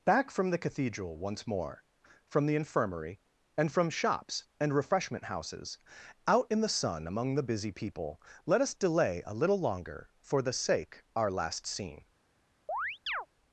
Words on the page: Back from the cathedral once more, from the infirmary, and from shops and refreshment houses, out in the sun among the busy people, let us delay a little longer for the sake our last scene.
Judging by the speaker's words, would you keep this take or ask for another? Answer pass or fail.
pass